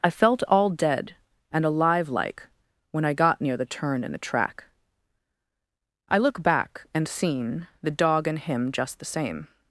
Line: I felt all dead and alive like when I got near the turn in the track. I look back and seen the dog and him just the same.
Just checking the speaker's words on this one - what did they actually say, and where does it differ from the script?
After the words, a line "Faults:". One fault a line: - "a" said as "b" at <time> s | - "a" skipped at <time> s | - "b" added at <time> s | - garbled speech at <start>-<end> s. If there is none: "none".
I felt all dead and alive like when I got near the turn in the track. I look back and seen the dog and him just the same.
Faults:
none